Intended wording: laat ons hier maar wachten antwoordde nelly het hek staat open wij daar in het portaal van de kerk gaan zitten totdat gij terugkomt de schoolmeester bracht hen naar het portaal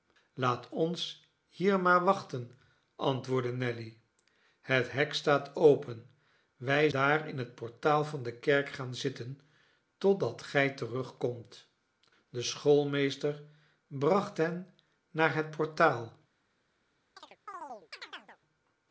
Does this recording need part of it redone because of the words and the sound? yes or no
yes